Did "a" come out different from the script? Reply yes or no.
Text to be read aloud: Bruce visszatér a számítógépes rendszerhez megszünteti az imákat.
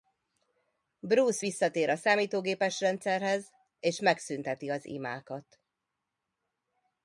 no